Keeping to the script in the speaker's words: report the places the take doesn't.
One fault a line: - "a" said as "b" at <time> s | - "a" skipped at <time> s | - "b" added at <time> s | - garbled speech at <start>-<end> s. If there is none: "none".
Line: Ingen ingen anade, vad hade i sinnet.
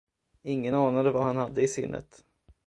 - "ingen" skipped at 0.8 s
- "han" added at 1.2 s